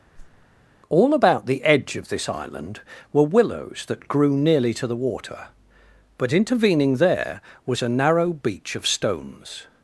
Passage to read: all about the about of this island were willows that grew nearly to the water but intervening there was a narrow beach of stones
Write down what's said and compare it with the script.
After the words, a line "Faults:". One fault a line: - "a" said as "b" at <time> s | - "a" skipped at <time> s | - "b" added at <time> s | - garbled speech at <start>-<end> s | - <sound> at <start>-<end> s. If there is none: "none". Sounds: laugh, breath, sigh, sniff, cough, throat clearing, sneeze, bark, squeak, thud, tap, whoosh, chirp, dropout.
all about the edge of this island were willows that grew nearly to the water but intervening there was a narrow beach of stones
Faults:
- whoosh at 0.1-0.5 s
- "about" said as "edge" at 1.6 s